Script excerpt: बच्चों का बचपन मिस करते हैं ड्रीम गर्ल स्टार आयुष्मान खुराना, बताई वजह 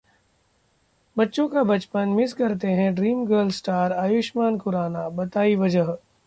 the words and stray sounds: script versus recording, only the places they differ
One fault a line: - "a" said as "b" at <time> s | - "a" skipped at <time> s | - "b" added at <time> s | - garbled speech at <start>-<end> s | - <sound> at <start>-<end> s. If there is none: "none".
none